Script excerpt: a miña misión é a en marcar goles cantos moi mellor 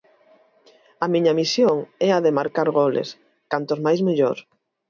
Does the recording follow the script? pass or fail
fail